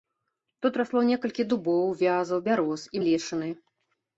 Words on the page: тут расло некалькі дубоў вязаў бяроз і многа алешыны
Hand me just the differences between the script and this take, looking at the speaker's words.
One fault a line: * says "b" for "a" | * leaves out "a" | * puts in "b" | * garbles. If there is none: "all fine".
* leaves out "многа"